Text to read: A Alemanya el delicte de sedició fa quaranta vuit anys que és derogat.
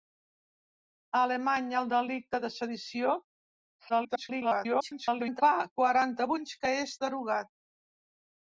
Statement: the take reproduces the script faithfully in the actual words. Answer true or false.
false